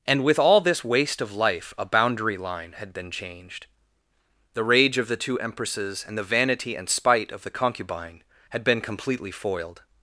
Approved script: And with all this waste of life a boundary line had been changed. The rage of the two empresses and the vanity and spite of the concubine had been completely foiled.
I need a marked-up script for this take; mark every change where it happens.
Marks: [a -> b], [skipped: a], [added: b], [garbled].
And with all this waste of life a boundary line had been changed. The rage of the two empresses and the vanity and spite of the concubine had been completely foiled.